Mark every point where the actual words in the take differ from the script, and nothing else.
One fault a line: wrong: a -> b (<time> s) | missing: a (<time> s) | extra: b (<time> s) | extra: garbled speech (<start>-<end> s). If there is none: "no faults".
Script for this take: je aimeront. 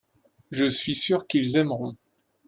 extra: suis sûr qu'ils (0.7 s)